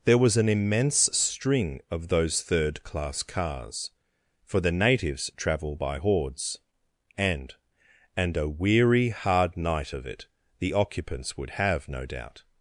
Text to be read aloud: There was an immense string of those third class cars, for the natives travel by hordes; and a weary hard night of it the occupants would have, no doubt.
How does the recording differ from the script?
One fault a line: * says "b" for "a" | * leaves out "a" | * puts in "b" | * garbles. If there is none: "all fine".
* puts in "and"